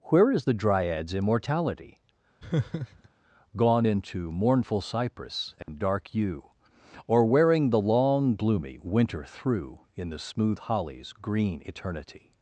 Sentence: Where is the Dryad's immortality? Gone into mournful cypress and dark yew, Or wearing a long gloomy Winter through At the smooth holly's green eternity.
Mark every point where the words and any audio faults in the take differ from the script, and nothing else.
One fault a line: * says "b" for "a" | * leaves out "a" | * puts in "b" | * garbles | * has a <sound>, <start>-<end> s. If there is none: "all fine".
* has a laugh, 2.4-3.1 s
* has a dropout, 5.6-5.7 s
* says "the" for "a"
* says "In" for "At"